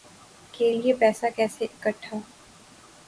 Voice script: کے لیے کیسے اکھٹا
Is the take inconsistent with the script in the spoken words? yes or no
yes